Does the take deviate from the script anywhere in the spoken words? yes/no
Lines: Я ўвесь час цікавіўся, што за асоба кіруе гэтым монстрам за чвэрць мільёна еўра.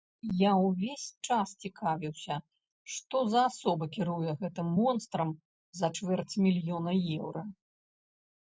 no